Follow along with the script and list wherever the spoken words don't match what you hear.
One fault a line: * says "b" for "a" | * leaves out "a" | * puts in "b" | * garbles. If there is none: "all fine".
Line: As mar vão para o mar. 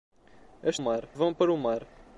all fine